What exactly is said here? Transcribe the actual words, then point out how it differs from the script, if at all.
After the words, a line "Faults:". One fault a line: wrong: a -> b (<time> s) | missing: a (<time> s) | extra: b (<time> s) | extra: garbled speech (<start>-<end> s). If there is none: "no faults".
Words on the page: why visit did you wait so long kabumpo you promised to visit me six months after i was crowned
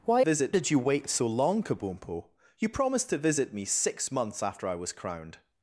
why visit did you wait so long kabumpo you promised to visit me six months after i was crowned
Faults:
no faults